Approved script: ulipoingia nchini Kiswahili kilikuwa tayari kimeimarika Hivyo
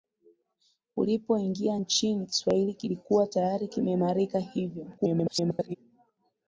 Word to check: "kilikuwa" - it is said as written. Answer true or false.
true